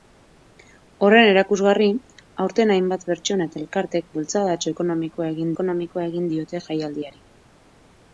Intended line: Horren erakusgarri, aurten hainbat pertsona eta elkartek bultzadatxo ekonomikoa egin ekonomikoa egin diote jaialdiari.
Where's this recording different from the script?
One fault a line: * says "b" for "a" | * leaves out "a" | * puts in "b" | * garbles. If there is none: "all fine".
all fine